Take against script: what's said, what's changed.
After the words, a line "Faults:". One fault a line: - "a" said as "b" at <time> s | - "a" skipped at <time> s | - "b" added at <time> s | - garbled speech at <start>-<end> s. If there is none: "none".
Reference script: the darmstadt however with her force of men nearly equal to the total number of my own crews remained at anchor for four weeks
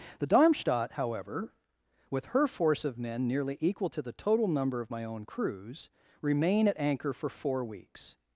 the darmstadt however with her force of men nearly equal to the total number of my own crews remain at anchor for four weeks
Faults:
- "remained" said as "remain" at 6.2 s